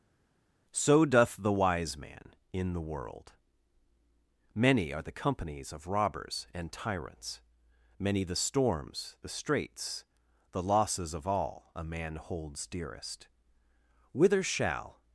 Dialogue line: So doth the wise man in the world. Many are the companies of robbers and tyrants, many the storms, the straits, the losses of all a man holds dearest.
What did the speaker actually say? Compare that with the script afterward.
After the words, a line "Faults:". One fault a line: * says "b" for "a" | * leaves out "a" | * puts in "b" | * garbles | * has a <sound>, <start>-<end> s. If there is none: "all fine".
So doth the wise man in the world. Many are the companies of robbers and tyrants, many the storms, the straits, the losses of all a man holds dearest. Whither shall
Faults:
* puts in "Whither shall"